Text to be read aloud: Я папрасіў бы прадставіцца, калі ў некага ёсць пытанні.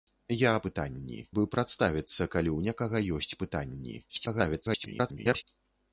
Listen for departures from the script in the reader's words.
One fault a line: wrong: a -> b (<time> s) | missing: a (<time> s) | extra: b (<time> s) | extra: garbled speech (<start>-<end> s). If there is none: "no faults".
wrong: папрасіў -> пытанні (0.7 s)
extra: garbled speech (4.1-5.4 s)